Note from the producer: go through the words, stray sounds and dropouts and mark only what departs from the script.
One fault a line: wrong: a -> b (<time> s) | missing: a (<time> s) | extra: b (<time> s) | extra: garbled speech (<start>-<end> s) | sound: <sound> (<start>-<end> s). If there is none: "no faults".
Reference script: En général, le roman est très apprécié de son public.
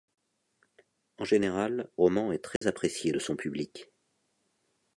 missing: le (1.9 s)
sound: dropout (2.6-2.6 s)